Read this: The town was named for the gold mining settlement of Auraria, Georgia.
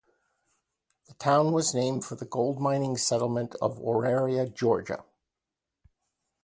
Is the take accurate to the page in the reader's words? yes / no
yes